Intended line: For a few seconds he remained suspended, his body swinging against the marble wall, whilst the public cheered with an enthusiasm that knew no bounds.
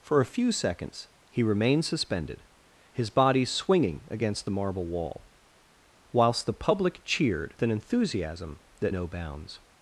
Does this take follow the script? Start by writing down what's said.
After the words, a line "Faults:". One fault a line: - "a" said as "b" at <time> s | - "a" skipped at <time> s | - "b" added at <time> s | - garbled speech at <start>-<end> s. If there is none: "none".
For a few seconds he remained suspended, his body swinging against the marble wall, whilst the public cheered an enthusiasm that no bounds.
Faults:
- "with" skipped at 7.5 s
- "knew" skipped at 8.9 s